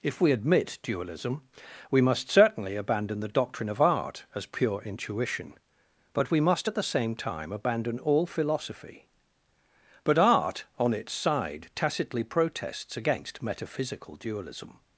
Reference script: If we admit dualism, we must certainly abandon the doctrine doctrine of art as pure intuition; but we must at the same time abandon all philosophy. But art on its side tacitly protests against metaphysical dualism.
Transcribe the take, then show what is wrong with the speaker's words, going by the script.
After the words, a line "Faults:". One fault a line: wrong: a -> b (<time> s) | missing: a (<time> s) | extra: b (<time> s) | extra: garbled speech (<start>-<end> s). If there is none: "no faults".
If we admit dualism, we must certainly abandon the doctrine of art as pure intuition; but we must at the same time abandon all philosophy. But art on its side tacitly protests against metaphysical dualism.
Faults:
missing: doctrine (3.7 s)